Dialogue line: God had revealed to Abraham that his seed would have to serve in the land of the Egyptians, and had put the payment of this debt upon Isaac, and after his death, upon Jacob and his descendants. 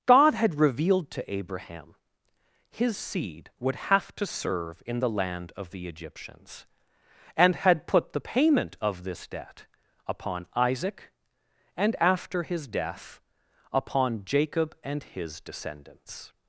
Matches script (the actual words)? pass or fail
fail